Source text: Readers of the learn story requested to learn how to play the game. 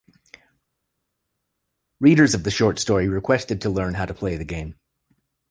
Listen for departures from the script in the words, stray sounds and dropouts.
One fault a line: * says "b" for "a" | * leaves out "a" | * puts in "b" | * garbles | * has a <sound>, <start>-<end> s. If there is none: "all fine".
* says "short" for "learn"